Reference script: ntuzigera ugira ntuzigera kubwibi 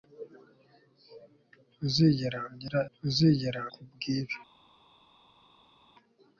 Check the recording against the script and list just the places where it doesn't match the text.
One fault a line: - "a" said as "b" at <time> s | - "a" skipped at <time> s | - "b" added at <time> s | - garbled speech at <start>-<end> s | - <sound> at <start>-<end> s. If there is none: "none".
none